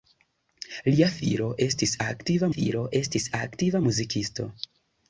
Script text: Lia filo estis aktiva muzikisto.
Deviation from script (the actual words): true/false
true